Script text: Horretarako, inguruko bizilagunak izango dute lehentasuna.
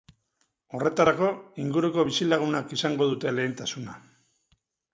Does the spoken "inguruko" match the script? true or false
true